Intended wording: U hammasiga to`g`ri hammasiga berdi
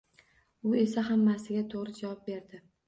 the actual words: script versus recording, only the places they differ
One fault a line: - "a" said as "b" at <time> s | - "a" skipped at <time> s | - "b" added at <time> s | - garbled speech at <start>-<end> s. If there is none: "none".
- "esa" added at 0.8 s
- "hammasiga" said as "javob" at 2.0 s